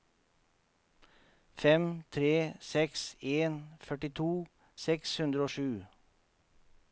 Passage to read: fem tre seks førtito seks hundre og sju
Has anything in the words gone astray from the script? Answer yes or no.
yes